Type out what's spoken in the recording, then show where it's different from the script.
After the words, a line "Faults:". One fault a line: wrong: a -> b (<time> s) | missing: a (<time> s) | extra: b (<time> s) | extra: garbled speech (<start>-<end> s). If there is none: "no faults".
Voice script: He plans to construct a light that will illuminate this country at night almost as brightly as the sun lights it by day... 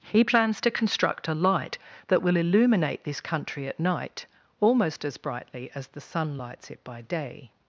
He plans to construct a light that will illuminate this country at night almost as brightly as the sun lights it by day...
Faults:
no faults